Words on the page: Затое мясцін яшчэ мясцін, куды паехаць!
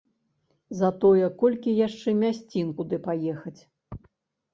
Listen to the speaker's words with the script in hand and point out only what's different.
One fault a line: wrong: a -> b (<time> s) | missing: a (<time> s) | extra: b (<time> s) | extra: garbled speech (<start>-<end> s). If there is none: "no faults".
wrong: мясцін -> колькі (1.4 s)